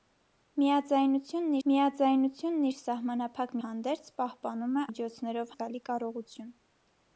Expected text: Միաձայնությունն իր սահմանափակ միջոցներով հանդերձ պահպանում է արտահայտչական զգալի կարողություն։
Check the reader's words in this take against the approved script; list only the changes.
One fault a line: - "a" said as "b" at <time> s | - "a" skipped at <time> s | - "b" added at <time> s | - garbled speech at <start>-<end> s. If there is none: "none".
- "միաձայնությունն" added at 1.7 s
- "միջոցներով" skipped at 3.5 s
- "արտահայտչական" said as "միջոցներով" at 4.9 s